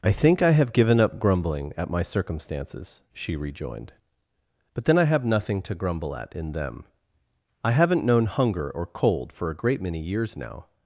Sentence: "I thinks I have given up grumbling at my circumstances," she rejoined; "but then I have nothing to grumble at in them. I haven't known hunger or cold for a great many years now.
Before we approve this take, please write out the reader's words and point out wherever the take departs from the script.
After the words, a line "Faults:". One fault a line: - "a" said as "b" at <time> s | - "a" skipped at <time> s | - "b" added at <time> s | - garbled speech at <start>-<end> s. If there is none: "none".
"I think I have given up grumbling at my circumstances," she rejoined; "but then I have nothing to grumble at in them. I haven't known hunger or cold for a great many years now.
Faults:
- "thinks" said as "think" at 0.1 s